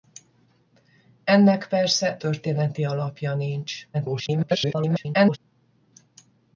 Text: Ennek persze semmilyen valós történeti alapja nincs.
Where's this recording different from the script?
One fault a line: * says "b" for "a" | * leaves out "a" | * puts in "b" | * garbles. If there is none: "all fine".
* leaves out "semmilyen valós"
* garbles